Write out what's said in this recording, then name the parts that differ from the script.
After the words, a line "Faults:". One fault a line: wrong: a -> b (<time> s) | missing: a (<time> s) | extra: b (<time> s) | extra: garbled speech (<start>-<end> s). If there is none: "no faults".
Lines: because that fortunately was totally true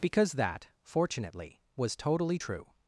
because that fortunately was totally true
Faults:
no faults